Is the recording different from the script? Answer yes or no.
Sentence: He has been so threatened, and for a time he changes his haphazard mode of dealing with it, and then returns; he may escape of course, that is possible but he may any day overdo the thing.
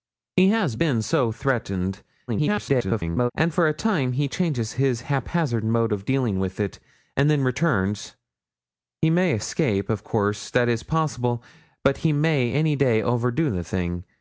yes